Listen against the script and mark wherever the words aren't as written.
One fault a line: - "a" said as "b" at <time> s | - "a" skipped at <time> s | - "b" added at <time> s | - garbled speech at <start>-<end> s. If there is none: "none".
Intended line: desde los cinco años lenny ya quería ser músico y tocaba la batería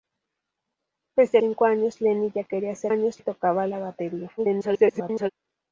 - "los" skipped at 1.4 s
- "músico" said as "años" at 2.9 s
- garbled speech at 4.4-5.3 s